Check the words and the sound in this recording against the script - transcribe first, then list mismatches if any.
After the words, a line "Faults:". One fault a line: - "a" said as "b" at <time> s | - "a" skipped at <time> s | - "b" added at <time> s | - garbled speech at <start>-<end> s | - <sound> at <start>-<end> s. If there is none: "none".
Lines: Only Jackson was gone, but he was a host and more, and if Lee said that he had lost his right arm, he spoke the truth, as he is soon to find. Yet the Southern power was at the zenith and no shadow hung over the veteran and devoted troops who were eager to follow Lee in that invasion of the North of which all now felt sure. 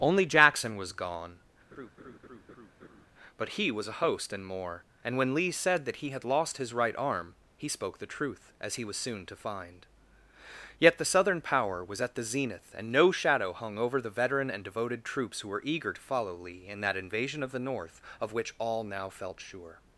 Only Jackson was gone, but he was a host and more, and when Lee said that he had lost his right arm, he spoke the truth, as he was soon to find. Yet the Southern power was at the zenith and no shadow hung over the veteran and devoted troops who were eager to follow Lee in that invasion of the North of which all now felt sure.
Faults:
- laugh at 1.7-3.1 s
- "if" said as "when" at 5.2 s
- "is" said as "was" at 8.8 s